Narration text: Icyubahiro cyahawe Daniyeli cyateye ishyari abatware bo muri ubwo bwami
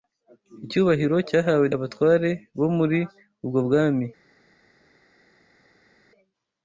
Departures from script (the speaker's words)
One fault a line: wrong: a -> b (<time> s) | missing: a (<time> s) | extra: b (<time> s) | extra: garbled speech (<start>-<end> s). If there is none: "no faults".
missing: Daniyeli cyateye ishyari (1.6 s)